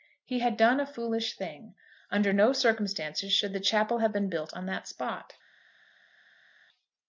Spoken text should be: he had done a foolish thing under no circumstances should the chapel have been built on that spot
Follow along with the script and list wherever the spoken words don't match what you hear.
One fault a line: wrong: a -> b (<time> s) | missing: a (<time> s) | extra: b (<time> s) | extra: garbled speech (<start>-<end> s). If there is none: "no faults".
no faults